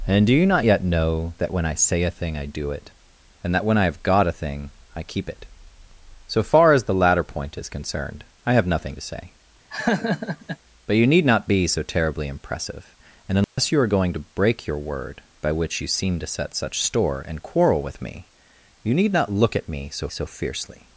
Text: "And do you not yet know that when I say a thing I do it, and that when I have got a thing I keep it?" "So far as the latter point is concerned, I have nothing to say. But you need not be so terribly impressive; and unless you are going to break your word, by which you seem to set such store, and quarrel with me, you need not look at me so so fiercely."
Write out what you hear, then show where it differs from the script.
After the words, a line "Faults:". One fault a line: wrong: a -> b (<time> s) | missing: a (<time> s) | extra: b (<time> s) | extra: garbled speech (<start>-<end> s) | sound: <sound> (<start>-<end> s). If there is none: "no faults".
"And do you not yet know that when I say a thing I do it, and that when I have got a thing I keep it?" "So far as the latter point is concerned, I have nothing to say. But you need not be so terribly impressive; and unless you are going to break your word, by which you seem to set such store, and quarrel with me, you need not look at me so so fiercely."
Faults:
sound: laugh (9.7-10.6 s)
sound: dropout (13.4-13.6 s)